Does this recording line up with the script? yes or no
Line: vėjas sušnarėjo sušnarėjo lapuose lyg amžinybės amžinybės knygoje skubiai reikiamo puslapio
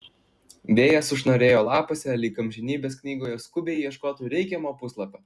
no